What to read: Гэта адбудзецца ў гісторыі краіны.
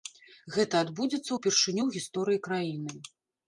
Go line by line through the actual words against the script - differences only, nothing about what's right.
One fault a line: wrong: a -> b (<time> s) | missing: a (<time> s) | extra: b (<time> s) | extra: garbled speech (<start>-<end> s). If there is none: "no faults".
extra: ўпершыню (1.3 s)